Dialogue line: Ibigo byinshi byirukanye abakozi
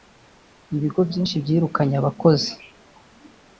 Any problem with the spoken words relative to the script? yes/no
no